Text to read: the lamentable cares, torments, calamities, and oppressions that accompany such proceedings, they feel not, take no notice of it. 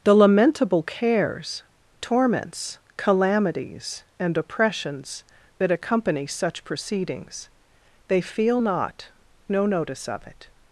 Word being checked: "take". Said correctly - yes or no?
no